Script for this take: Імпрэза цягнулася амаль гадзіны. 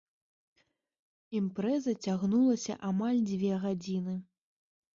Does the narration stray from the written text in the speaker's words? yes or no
yes